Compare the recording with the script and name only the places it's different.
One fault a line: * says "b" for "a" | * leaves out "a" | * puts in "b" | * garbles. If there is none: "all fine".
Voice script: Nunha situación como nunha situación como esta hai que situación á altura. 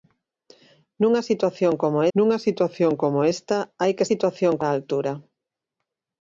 all fine